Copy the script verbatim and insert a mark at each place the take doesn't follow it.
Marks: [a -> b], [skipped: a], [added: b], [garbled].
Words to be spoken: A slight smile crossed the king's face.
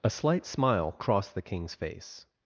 A slight smile crossed the king's face.